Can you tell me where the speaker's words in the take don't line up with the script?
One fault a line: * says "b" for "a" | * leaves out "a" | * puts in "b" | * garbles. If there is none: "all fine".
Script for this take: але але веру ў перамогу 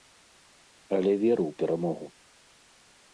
* leaves out "але"